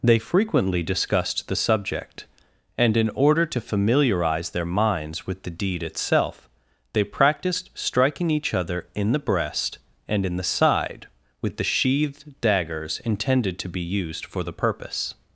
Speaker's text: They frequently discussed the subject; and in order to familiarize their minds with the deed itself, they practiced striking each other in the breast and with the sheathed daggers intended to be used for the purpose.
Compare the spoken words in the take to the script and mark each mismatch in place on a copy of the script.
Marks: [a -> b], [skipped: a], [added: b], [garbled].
They frequently discussed the subject; and in order to familiarize their minds with the deed itself, they practiced striking each other in the breast and [added: in the side] with the sheathed daggers intended to be used for the purpose.